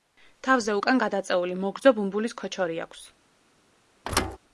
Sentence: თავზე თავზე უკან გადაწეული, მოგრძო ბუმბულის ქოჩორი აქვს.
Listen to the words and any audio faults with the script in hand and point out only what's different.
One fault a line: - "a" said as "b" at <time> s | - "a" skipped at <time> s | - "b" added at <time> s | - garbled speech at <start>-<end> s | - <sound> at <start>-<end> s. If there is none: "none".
- "თავზე" skipped at 0.8 s
- thud at 4.0-4.4 s